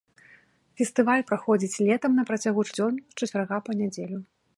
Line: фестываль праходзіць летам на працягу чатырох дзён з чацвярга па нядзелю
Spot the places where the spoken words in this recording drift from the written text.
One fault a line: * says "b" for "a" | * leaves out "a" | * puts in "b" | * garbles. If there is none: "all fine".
* leaves out "чатырох"